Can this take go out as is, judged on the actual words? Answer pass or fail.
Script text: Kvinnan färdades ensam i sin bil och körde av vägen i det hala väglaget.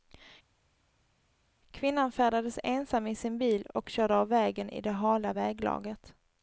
pass